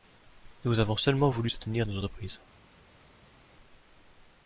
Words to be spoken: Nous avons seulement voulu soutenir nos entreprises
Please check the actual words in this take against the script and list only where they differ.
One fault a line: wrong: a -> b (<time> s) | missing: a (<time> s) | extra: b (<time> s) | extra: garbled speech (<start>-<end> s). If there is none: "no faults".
no faults